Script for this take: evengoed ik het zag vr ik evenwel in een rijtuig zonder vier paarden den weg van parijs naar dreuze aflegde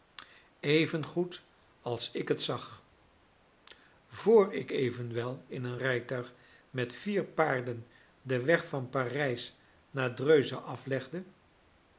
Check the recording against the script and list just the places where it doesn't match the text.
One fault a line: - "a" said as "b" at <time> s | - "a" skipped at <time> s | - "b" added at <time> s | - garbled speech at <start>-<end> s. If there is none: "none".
- "als" added at 1.8 s
- "zonder" said as "met" at 6.7 s